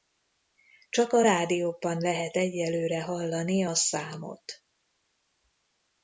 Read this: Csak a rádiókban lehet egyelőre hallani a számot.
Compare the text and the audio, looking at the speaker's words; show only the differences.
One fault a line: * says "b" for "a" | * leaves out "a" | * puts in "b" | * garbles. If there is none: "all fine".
all fine